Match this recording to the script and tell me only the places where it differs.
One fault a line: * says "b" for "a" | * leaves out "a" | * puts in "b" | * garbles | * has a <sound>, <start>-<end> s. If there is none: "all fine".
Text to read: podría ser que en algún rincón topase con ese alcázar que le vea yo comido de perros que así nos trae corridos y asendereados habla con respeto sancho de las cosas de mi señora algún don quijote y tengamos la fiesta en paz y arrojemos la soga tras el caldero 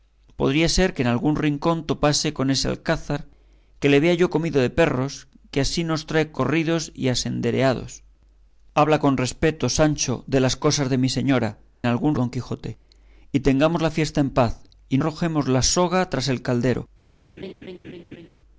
* has a laugh, 17.4-18.3 s